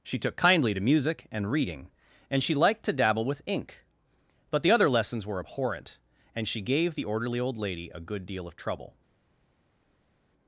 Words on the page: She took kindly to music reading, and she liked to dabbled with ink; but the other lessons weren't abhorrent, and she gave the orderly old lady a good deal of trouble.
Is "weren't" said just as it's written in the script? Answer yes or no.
no